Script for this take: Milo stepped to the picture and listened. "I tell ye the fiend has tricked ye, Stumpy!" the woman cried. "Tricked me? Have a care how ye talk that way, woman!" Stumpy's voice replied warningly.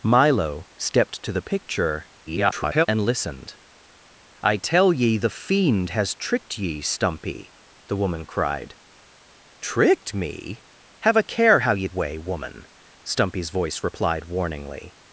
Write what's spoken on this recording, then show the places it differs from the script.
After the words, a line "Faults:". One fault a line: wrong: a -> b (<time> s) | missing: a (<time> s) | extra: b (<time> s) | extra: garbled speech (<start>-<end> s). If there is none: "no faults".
Milo stepped to the picture [garbled] and listened. "I tell ye the fiend has tricked ye, Stumpy!" the woman cried. "Tricked me? Have a care how ye way, woman!" Stumpy's voice replied warningly.
Faults:
extra: garbled speech (2.3-2.9 s)
missing: talk that (11.9 s)